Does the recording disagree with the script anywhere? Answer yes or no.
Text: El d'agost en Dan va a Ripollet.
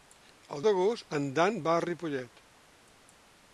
no